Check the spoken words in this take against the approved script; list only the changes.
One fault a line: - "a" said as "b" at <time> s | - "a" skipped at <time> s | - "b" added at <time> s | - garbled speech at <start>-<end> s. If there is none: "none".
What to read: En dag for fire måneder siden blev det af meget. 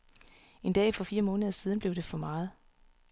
- "af" said as "for" at 2.0 s